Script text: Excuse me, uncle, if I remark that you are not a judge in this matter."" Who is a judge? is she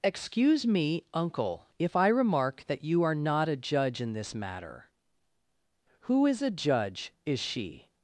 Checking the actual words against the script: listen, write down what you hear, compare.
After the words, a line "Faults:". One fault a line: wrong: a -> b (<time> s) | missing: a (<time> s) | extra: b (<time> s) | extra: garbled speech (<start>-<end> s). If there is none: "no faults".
Excuse me, uncle, if I remark that you are not a judge in this matter."" Who is a judge? is she
Faults:
no faults